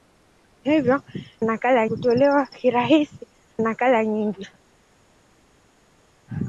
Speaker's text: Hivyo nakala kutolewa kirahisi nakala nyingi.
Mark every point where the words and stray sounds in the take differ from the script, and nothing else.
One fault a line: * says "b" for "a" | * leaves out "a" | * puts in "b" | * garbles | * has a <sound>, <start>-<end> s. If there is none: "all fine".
all fine